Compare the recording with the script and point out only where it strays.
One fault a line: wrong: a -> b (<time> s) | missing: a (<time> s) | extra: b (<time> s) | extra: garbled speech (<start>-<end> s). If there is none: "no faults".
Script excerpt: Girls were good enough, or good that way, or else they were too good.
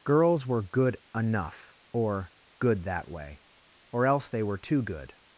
no faults